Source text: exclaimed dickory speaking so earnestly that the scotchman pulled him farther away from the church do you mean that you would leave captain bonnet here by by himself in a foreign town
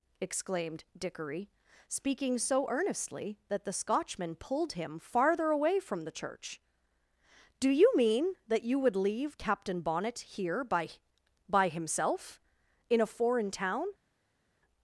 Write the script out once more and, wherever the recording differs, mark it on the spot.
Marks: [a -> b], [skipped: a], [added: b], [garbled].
exclaimed dickory speaking so earnestly that the scotchman pulled him farther away from the church do you mean that you would leave captain bonnet here by by himself in a foreign town